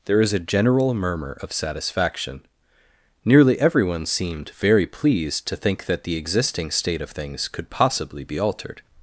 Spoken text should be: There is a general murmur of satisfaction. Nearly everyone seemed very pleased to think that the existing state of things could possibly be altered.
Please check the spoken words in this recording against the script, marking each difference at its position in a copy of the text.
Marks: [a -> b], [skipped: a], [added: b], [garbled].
There is a general murmur of satisfaction. Nearly everyone seemed very pleased to think that the existing state of things could possibly be altered.